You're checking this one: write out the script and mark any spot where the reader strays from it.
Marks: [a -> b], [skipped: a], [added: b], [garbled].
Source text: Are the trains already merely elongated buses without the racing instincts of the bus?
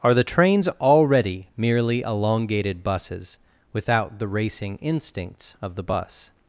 Are the trains already merely elongated buses without the racing instincts of the bus?